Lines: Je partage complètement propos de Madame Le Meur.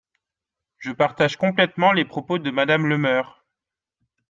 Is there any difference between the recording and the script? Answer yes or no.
yes